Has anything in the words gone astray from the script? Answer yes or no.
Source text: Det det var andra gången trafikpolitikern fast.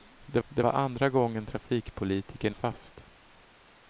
no